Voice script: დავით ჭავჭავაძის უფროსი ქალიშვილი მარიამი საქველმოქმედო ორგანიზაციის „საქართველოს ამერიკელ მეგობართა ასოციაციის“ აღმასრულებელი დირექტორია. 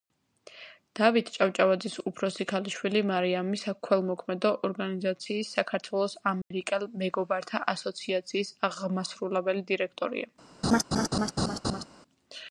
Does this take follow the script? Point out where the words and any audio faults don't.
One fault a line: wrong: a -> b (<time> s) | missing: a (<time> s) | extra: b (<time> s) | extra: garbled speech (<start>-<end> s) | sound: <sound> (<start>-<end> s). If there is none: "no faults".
sound: dropout (6.4-6.5 s)
sound: laugh (10.6-11.9 s)